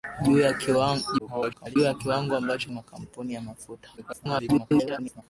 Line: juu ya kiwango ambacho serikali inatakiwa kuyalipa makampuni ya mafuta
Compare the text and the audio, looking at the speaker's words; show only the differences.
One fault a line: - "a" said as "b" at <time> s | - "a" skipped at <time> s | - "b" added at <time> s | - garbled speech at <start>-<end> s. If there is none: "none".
- garbled speech at 1.2-1.8 s
- "serikali inatakiwa kuyalipa" skipped at 2.7 s
- garbled speech at 4.0-5.2 s